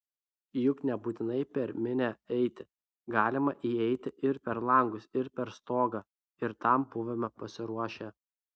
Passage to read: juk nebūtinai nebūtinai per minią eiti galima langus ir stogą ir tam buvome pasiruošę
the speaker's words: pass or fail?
fail